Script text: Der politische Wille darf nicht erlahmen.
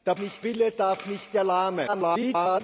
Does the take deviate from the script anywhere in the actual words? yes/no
yes